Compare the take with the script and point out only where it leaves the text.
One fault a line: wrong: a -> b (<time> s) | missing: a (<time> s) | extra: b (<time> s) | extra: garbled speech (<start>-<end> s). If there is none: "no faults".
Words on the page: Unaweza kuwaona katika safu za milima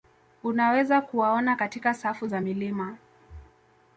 no faults